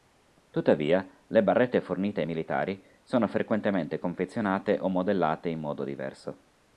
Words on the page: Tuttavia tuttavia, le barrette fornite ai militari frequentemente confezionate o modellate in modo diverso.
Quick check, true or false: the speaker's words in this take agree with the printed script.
false